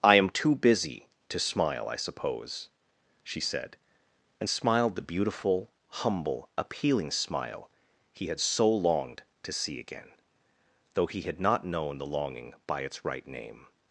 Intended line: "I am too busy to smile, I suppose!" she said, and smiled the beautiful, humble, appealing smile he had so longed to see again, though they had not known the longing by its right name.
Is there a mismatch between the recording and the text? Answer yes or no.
yes